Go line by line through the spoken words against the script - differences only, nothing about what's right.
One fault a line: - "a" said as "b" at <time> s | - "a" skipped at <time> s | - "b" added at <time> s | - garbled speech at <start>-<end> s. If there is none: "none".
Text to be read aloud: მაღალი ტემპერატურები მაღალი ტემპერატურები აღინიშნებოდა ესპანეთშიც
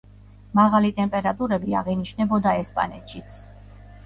- "მაღალი ტემპერატურები" skipped at 1.8 s